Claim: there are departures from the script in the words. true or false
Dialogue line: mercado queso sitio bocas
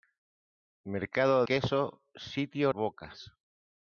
false